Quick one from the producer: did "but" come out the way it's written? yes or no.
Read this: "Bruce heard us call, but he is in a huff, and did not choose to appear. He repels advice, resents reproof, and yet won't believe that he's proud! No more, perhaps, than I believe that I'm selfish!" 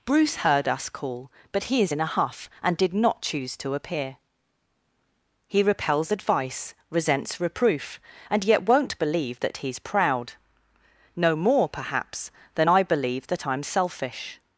yes